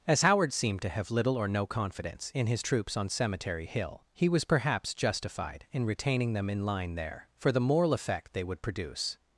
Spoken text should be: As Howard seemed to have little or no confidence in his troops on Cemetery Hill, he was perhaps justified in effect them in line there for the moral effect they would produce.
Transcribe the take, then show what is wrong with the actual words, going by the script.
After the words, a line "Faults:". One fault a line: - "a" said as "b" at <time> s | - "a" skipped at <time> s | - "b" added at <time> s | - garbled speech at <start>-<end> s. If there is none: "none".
As Howard seemed to have little or no confidence in his troops on Cemetery Hill, he was perhaps justified in retaining them in line there for the moral effect they would produce.
Faults:
- "effect" said as "retaining" at 5.9 s